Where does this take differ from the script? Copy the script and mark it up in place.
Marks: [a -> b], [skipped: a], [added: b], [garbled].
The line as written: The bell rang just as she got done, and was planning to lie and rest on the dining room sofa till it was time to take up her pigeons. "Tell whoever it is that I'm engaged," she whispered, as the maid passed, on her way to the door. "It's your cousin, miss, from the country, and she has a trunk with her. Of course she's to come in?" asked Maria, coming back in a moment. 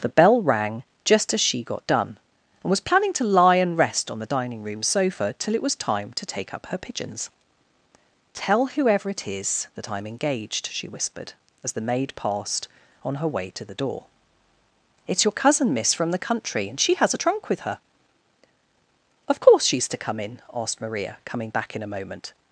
The bell rang just as she got done, and was planning to lie and rest on the dining room sofa till it was time to take up her pigeons. "Tell whoever it is that I'm engaged," she whispered, as the maid passed, on her way to the door. "It's your cousin, miss, from the country, and she has a trunk with her. Of course she's to come in?" asked Maria, coming back in a moment.